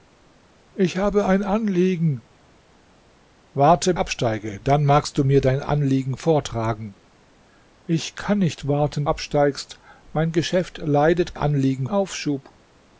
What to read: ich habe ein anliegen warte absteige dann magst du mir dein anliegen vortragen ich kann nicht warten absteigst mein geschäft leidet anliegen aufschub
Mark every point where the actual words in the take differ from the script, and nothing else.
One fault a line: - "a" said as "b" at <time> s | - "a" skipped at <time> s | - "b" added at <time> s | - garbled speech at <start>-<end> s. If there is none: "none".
none